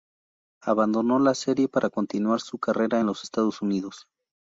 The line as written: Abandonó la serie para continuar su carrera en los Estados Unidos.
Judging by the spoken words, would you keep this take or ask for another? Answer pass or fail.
pass